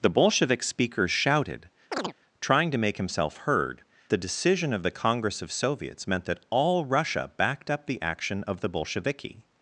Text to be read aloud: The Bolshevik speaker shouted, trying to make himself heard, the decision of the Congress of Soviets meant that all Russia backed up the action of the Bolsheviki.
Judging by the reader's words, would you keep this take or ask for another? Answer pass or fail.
pass